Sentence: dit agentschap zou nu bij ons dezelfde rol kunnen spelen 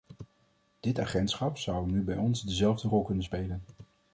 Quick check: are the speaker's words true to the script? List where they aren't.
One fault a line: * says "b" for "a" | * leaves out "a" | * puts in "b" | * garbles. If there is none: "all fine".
all fine